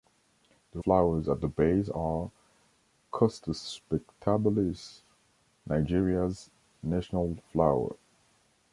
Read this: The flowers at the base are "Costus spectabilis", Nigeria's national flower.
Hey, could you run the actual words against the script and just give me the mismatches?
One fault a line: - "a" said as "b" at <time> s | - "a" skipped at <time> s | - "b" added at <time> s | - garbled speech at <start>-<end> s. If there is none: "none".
none